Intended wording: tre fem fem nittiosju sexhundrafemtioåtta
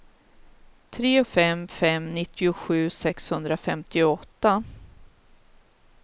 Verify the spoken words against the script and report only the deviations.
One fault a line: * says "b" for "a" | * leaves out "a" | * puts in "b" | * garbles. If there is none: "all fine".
all fine